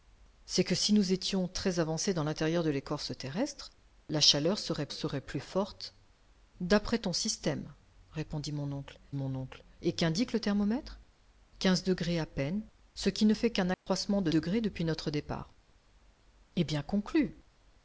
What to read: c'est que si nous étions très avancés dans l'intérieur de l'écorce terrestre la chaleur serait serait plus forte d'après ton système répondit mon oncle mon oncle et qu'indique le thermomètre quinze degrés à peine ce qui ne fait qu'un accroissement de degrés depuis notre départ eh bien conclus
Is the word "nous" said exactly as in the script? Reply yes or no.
yes